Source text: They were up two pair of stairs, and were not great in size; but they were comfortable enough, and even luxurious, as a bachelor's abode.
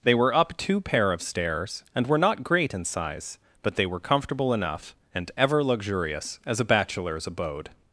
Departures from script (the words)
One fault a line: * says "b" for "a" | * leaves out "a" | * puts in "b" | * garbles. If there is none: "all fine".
* says "ever" for "even"